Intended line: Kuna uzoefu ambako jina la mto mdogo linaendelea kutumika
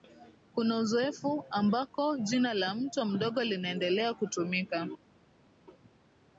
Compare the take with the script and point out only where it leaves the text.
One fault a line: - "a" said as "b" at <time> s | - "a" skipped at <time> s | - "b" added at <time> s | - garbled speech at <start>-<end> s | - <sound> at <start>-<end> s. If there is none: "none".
none